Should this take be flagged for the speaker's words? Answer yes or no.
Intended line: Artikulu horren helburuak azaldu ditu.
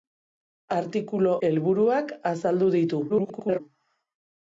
yes